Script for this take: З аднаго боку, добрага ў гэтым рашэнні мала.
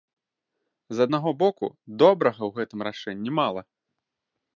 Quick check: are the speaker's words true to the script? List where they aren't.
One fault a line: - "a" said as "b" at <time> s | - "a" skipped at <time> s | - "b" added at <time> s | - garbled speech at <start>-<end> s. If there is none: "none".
none